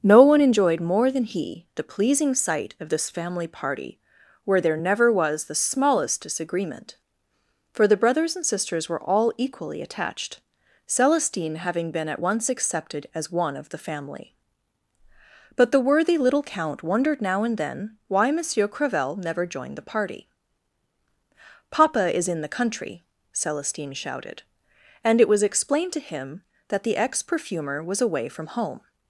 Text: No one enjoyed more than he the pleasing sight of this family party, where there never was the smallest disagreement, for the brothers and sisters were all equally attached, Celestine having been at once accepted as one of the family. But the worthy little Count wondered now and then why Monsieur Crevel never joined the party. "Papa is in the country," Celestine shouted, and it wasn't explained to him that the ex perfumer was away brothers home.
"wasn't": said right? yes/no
no